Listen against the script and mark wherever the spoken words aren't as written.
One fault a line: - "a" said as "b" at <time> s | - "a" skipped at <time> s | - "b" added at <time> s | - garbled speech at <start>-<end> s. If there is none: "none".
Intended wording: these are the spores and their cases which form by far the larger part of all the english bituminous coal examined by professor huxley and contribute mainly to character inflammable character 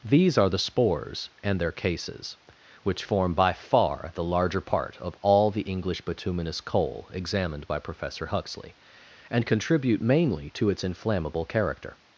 - "character" said as "its" at 10.7 s